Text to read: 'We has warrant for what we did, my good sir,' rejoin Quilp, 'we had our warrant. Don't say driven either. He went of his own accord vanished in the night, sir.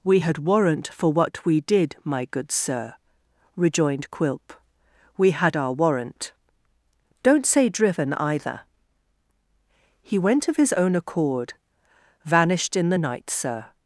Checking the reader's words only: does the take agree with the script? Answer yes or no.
no